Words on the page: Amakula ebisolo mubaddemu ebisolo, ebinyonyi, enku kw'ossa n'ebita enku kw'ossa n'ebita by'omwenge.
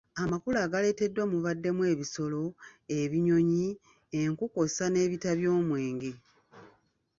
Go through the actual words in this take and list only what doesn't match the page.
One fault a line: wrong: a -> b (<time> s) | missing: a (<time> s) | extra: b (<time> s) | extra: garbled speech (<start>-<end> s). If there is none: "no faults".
wrong: ebisolo -> agaleeteddwa (0.7 s)
missing: enku kw'ossa n'ebita (5.3 s)